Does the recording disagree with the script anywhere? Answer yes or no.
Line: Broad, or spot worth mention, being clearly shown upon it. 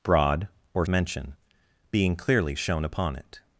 yes